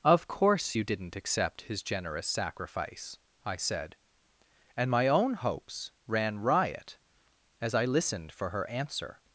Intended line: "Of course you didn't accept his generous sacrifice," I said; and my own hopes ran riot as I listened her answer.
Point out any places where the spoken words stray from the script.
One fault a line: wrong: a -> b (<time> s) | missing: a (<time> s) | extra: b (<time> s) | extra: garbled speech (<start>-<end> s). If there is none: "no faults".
extra: for (8.3 s)